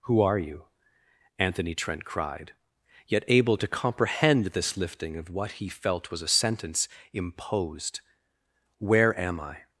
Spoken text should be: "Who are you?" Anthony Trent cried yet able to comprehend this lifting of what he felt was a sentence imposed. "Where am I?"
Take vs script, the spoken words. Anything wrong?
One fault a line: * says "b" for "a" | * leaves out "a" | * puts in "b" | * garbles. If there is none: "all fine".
all fine